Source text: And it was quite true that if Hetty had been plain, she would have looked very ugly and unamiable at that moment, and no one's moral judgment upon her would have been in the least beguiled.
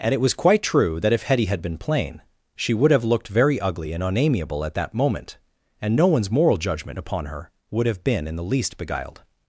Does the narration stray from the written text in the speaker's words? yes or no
no